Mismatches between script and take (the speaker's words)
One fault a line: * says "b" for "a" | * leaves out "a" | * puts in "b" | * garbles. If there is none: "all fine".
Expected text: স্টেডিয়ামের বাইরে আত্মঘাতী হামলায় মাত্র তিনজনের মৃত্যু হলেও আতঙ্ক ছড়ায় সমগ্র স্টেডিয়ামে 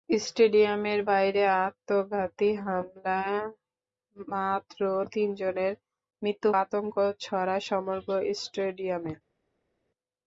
* leaves out "হলেও"